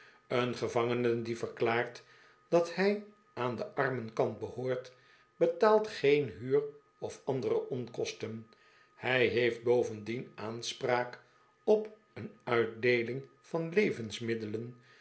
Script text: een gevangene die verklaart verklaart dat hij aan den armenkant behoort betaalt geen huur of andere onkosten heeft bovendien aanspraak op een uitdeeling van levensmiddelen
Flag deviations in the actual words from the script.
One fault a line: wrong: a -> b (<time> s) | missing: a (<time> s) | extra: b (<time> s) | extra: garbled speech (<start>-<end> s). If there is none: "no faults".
missing: verklaart (2.0 s)
extra: hij (8.9 s)